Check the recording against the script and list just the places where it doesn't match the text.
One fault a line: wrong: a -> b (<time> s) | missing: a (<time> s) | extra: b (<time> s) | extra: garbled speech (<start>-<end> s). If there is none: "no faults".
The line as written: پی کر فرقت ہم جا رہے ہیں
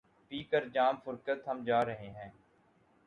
extra: جام (0.7 s)